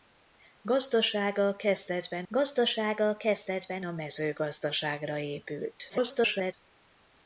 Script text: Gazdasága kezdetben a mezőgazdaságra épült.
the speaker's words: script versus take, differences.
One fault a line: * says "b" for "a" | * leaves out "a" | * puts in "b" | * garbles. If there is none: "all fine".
* puts in "gazdasága kezdetben"
* garbles